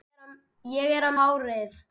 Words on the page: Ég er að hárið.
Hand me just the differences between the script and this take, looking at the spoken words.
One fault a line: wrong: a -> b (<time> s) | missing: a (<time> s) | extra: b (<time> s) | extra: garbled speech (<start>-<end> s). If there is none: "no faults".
no faults